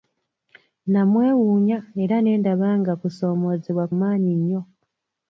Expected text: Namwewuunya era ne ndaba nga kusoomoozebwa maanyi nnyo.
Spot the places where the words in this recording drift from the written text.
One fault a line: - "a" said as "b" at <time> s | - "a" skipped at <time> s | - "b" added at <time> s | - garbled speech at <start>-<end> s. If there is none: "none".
none